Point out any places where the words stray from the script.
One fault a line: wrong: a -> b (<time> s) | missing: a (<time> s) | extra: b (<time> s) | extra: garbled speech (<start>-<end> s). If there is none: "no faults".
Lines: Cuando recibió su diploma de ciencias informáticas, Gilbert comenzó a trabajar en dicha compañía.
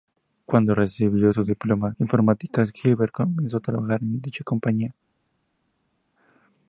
missing: de ciencias (1.9 s)